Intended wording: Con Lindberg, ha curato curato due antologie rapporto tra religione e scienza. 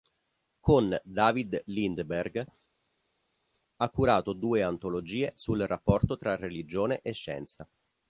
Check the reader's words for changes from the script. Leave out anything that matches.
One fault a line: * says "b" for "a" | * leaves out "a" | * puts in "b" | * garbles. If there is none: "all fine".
* puts in "David"
* leaves out "curato"
* puts in "sul"